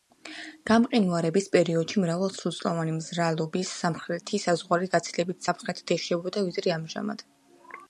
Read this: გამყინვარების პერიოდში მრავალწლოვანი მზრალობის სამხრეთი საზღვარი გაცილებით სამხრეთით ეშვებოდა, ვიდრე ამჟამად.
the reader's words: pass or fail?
pass